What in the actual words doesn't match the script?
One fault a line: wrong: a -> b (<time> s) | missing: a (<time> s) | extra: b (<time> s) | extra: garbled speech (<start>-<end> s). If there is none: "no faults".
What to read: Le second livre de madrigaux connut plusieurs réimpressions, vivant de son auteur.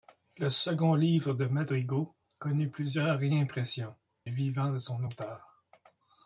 no faults